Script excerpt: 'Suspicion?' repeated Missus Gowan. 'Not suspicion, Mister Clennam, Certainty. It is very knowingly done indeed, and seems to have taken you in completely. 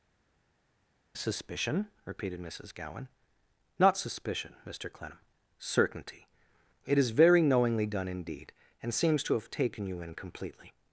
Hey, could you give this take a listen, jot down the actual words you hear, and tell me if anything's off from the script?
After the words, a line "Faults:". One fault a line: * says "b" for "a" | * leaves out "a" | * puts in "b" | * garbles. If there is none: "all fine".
'Suspicion?' repeated Missus Gowan. 'Not suspicion, Mister Clennam, Certainty. It is very knowingly done indeed, and seems to have taken you in completely.
Faults:
all fine